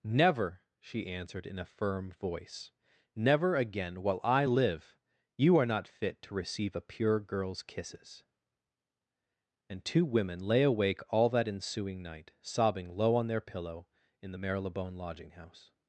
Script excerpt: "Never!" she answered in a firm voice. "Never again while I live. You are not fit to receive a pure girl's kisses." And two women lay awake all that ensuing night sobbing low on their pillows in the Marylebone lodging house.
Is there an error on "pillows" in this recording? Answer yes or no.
yes